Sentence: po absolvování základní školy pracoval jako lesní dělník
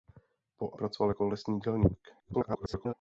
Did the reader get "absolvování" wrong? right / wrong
wrong